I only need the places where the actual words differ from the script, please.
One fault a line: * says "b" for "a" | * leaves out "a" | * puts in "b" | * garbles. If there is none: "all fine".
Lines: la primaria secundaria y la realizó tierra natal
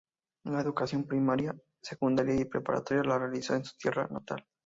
* puts in "educación"
* puts in "preparatoria"
* puts in "en su"